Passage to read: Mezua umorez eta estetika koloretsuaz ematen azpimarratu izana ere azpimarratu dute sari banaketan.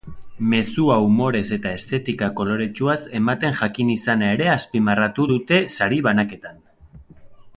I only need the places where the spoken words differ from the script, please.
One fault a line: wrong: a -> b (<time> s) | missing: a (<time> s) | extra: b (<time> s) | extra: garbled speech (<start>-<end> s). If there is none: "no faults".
wrong: azpimarratu -> jakin (3.6 s)